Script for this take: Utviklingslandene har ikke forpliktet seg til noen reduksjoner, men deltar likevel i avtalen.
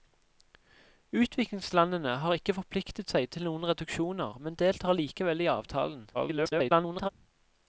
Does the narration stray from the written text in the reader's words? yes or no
yes